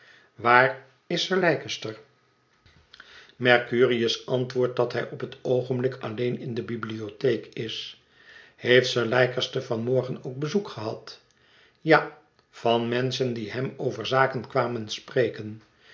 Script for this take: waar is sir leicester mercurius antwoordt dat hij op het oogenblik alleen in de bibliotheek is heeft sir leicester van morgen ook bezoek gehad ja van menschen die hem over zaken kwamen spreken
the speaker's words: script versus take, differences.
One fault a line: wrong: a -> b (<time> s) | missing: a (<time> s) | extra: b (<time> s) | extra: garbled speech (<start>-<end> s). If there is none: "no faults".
no faults